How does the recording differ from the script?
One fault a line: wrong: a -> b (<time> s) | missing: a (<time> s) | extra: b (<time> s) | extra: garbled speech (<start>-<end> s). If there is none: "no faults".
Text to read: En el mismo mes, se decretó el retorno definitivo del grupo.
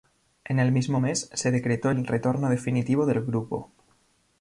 no faults